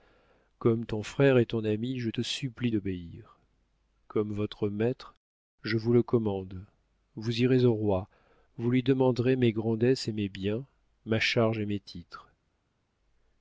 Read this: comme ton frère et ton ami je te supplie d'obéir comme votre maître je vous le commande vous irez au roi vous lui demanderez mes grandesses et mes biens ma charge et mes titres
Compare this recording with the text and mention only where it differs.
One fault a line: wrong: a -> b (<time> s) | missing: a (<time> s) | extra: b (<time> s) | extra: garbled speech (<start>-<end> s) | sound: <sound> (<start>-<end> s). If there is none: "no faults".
no faults